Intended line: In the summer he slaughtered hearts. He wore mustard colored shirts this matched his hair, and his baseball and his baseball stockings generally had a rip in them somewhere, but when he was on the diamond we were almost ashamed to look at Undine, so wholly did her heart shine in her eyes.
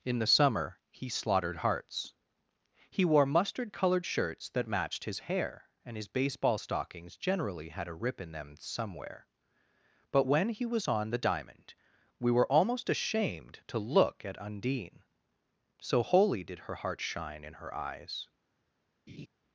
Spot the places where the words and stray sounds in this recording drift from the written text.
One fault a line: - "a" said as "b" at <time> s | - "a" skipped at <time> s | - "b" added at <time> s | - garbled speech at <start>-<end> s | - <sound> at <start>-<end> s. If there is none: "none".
- "this" said as "that" at 4.5 s
- "and his baseball" skipped at 6.6 s
- laugh at 19.1-19.3 s